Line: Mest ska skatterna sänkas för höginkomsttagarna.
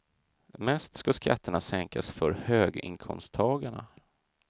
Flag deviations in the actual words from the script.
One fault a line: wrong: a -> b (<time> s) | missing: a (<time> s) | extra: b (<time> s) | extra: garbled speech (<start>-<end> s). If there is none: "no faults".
no faults